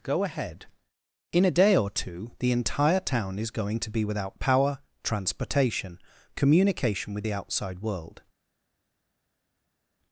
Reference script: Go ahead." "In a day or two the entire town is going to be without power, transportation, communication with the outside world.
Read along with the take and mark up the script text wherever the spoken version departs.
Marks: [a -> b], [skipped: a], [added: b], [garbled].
Go ahead." "In a day or two the entire town is going to be without power, transportation, communication with the outside world.